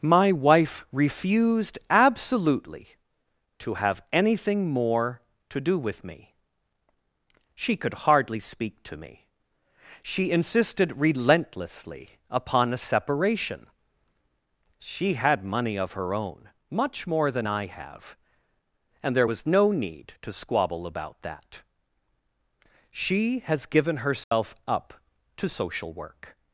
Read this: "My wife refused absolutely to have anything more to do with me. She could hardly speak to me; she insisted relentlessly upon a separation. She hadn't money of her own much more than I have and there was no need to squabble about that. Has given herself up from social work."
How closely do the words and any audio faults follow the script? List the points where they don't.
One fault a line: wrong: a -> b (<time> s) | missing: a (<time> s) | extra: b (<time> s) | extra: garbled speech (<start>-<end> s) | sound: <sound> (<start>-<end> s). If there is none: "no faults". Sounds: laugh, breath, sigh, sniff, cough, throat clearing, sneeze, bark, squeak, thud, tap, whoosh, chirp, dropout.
wrong: hadn't -> had (15.1 s)
extra: She (22.9 s)
sound: dropout (24.2-24.3 s)
wrong: from -> to (25.4 s)